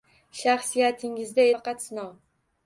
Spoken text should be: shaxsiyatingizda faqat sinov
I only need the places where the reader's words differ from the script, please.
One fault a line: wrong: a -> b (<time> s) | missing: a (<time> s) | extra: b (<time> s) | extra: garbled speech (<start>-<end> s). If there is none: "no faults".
no faults